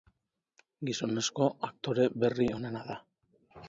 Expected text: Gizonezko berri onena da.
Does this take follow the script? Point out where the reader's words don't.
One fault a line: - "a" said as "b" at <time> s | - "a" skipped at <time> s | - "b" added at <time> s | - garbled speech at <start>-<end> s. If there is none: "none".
- "aktore" added at 1.7 s